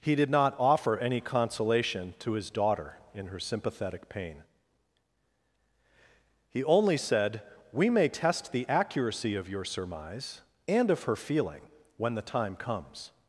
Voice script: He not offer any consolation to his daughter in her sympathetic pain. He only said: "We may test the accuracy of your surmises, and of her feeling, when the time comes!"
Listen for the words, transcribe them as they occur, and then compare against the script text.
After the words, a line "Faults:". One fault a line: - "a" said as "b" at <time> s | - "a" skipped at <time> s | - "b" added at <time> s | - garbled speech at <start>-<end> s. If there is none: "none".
He did not offer any consolation to his daughter in her sympathetic pain. He only said: "We may test the accuracy of your surmise, and of her feeling, when the time comes!"
Faults:
- "did" added at 0.1 s
- "surmises" said as "surmise" at 9.6 s